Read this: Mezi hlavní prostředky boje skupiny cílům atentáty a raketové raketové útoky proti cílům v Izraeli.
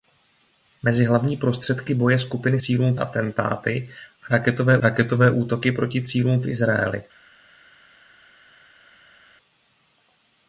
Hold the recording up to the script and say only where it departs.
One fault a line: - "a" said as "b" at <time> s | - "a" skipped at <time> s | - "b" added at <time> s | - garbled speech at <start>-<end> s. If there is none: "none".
none